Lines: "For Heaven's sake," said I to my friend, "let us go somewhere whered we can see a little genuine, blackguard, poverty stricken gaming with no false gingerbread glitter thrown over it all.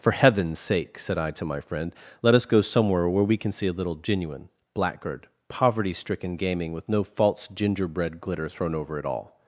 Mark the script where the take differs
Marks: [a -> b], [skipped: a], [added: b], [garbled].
"For Heaven's sake," said I to my friend, "let us go somewhere [whered -> where] we can see a little genuine, blackguard, poverty stricken gaming with no false gingerbread glitter thrown over it all.